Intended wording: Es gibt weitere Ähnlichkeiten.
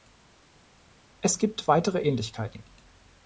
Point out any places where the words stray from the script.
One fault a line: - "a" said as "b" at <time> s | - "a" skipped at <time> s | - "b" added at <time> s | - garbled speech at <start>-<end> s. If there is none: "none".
none